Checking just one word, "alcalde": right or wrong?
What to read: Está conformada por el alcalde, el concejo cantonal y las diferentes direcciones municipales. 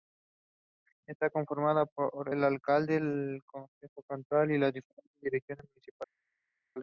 right